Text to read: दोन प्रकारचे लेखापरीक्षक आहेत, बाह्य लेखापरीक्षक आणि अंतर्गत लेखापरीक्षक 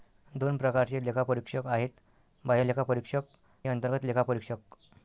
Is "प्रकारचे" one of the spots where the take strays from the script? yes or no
no